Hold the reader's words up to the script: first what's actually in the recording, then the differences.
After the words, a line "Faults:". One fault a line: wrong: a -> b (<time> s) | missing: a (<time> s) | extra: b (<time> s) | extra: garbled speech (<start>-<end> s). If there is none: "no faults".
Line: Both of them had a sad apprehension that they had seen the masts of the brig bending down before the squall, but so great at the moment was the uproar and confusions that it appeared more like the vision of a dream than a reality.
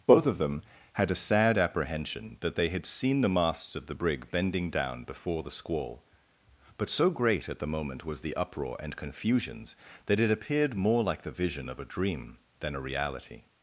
Both of them had a sad apprehension that they had seen the masts of the brig bending down before the squall, but so great at the moment was the uproar and confusions that it appeared more like the vision of a dream than a reality.
Faults:
no faults